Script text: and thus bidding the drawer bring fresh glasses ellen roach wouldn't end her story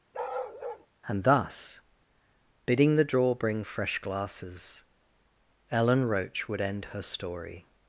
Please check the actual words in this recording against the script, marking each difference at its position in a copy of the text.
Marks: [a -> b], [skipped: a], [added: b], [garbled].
and thus bidding the drawer bring fresh glasses ellen roach [wouldn't -> would] end her story